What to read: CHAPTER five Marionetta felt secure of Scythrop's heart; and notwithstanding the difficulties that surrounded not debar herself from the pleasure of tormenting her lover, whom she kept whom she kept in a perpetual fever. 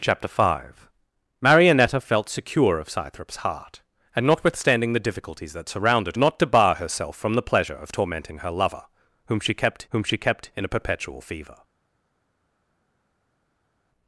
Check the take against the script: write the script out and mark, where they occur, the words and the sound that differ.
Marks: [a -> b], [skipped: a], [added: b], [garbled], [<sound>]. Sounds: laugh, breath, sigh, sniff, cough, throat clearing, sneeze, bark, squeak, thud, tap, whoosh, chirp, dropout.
CHAPTER five Marionetta felt secure of Scythrop's heart; and notwithstanding the difficulties that surrounded not debar herself from the pleasure of tormenting her lover, whom she kept whom she kept in a perpetual fever.